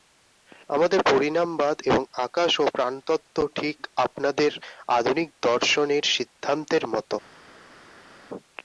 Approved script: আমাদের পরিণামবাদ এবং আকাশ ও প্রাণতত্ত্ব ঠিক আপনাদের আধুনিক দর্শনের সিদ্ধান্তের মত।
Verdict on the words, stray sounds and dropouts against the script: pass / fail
pass